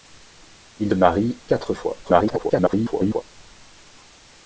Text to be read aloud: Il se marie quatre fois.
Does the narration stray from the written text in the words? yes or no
yes